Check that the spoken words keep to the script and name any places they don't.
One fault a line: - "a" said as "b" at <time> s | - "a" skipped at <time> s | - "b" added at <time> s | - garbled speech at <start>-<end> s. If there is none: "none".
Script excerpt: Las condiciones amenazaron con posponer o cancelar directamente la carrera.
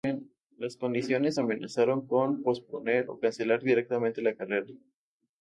none